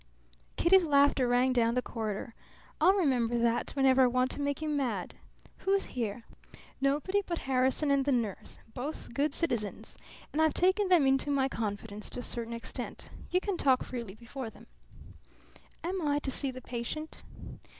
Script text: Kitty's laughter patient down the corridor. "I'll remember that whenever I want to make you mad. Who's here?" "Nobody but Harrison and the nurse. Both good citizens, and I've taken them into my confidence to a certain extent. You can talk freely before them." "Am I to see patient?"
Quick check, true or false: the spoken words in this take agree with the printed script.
false